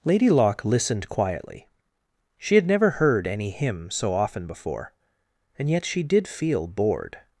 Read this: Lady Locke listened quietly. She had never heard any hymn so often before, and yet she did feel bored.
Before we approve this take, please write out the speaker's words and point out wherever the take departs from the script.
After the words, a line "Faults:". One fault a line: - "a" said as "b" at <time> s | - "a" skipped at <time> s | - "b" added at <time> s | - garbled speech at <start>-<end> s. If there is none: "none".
Lady Locke listened quietly. She had never heard any hymn so often before, and yet she did feel bored.
Faults:
none